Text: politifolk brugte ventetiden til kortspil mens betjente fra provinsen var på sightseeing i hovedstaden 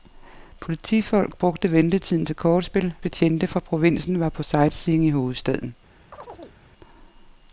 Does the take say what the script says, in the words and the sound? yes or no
no